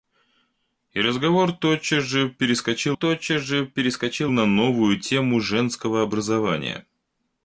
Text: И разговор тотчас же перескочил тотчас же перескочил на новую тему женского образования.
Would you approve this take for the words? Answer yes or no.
yes